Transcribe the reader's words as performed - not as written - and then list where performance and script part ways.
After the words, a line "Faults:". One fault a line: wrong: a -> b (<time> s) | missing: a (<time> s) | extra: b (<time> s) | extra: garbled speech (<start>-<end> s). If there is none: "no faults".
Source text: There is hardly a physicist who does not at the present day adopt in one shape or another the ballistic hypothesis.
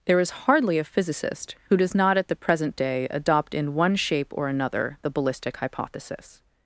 There is hardly a physicist who does not at the present day adopt in one shape or another the ballistic hypothesis.
Faults:
no faults